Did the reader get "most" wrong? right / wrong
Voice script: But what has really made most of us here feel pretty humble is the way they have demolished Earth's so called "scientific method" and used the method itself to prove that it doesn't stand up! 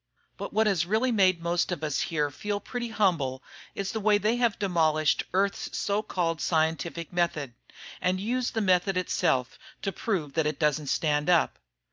right